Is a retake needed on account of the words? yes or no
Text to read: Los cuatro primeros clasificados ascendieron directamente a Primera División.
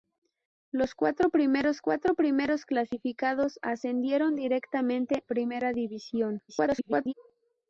yes